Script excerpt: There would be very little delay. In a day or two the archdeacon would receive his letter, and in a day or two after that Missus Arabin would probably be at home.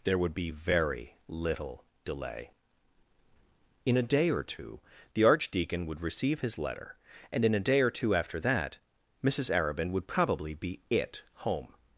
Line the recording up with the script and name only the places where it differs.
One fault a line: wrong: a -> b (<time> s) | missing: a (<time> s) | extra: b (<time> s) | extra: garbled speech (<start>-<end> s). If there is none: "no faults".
wrong: at -> it (10.9 s)